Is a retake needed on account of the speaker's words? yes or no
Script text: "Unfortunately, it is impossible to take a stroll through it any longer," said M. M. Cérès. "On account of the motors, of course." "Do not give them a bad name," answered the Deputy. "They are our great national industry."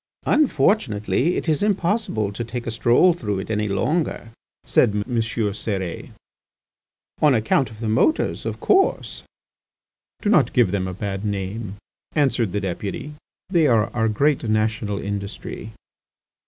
no